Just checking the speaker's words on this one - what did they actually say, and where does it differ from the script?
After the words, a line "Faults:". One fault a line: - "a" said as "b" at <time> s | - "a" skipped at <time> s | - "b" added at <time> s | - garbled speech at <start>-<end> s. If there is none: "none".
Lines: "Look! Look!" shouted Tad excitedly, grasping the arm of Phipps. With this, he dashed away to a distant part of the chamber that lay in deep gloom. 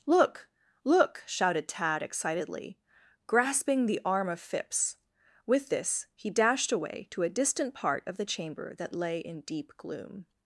"Look! Look!" shouted Tad excitedly, grasping the arm of Phipps. With this, he dashed away to a distant part of the chamber that lay in deep gloom.
Faults:
none